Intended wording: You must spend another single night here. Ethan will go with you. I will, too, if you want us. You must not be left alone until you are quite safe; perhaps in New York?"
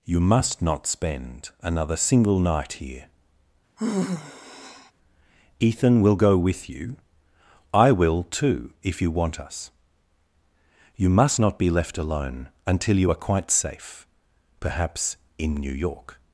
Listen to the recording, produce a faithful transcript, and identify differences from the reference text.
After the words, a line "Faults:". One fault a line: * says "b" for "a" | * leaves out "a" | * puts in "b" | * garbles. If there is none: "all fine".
You must not spend another single night here. Ethan will go with you. I will, too, if you want us. You must not be left alone until you are quite safe; perhaps in New York?"
Faults:
* puts in "not"